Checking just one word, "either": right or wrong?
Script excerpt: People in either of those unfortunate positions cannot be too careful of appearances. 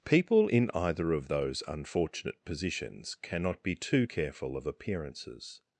right